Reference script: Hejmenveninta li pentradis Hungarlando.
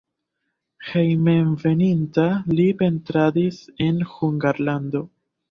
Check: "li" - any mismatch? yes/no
no